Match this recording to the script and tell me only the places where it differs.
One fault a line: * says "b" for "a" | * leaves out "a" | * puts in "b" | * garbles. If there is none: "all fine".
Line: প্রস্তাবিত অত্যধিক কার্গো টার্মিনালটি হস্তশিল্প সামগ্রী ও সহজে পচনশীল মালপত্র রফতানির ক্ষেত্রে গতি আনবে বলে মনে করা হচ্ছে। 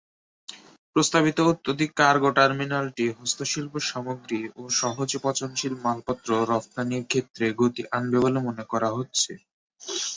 all fine